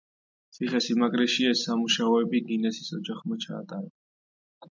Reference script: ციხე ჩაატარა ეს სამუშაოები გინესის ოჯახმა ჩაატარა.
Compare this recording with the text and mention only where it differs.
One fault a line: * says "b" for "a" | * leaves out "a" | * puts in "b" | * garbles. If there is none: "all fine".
* says "სიმაგრეში" for "ჩაატარა"